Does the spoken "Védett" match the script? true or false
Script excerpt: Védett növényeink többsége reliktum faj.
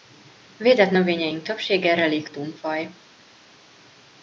true